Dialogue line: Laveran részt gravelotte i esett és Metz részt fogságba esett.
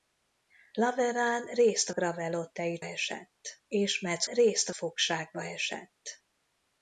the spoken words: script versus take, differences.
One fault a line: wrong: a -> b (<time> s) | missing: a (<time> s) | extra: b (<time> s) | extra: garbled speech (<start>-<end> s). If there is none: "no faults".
no faults